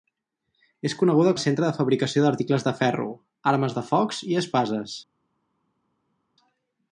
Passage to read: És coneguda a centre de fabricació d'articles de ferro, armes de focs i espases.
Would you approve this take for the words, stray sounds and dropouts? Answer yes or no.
yes